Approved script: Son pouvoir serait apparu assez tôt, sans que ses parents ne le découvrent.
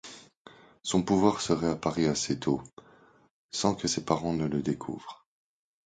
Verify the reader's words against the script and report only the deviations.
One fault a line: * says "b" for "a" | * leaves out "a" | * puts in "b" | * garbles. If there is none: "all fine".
all fine